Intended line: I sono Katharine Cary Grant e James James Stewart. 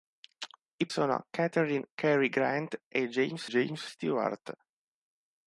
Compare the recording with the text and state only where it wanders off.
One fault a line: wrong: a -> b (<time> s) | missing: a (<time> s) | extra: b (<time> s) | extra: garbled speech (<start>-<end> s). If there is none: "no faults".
no faults